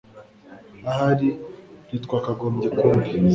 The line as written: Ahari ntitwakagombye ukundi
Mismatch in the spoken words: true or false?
false